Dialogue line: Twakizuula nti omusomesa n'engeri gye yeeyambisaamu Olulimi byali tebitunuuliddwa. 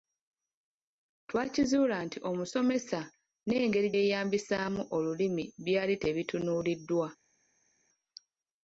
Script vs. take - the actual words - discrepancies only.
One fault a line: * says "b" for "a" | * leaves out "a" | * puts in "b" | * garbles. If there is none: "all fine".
* leaves out "gye"